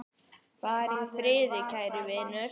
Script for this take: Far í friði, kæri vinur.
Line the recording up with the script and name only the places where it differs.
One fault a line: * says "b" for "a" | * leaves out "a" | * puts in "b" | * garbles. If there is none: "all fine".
all fine